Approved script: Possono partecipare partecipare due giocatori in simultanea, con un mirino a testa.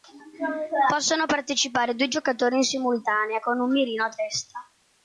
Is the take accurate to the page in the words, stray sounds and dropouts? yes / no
no